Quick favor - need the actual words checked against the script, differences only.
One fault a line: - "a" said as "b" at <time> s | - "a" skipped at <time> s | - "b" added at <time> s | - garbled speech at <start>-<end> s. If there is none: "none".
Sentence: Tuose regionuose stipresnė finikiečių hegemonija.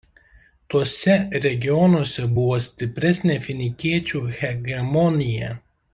- "buvo" added at 2.4 s